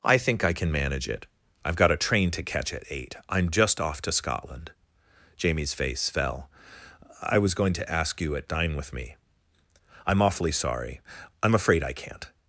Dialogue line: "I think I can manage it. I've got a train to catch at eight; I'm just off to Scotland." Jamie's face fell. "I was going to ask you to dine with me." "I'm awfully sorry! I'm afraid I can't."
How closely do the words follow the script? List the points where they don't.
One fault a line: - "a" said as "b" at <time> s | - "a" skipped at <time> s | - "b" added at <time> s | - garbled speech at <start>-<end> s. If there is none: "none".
- "to" said as "at" at 8.3 s